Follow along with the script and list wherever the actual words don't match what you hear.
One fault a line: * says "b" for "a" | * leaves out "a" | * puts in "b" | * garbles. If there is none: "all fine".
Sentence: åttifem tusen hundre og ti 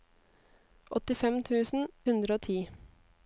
all fine